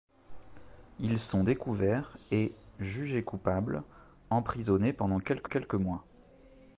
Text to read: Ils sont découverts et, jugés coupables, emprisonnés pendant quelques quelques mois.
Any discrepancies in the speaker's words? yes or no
no